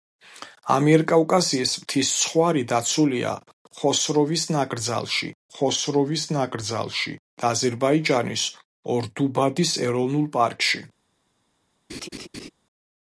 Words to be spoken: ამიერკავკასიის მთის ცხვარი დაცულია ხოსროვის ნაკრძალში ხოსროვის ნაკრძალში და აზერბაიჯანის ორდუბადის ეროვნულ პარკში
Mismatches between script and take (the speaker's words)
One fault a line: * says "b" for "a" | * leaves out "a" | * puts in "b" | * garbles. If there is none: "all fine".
all fine